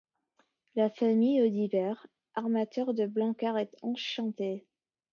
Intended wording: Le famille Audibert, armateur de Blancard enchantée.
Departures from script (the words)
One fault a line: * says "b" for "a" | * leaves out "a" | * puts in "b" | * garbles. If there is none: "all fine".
* says "La" for "Le"
* puts in "est"